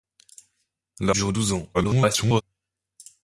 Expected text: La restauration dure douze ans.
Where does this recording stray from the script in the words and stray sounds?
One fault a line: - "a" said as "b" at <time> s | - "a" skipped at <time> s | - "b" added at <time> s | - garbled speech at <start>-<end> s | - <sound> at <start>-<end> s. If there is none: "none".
- "restauration" skipped at 1.1 s
- garbled speech at 1.7-2.4 s